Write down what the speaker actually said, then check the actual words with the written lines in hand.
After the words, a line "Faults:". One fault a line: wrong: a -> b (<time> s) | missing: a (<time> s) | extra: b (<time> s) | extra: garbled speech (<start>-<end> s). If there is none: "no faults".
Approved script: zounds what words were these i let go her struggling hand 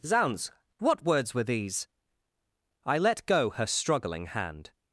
zounds what words were these i let go her struggling hand
Faults:
no faults